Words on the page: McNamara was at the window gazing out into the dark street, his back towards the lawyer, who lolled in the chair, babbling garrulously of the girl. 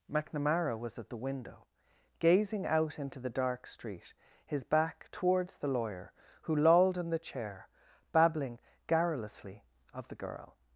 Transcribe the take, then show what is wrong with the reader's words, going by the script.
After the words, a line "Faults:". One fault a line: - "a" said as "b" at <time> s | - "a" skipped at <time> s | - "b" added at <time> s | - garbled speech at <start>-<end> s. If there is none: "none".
McNamara was at the window gazing out into the dark street, his back towards the lawyer, who lolled in the chair, babbling garrulously of the girl.
Faults:
none